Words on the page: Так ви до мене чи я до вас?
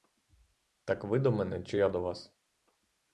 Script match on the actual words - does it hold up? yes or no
yes